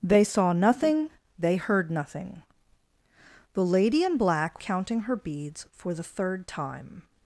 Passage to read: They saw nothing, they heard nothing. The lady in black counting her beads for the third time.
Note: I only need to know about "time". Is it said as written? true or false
true